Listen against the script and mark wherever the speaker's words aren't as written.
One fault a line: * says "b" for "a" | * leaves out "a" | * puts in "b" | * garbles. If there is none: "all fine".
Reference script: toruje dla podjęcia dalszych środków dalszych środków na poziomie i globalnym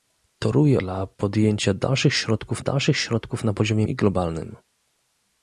all fine